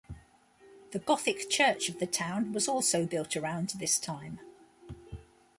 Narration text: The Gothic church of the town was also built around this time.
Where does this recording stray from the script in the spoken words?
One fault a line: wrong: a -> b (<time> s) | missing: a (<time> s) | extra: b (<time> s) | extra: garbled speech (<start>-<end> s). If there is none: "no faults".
no faults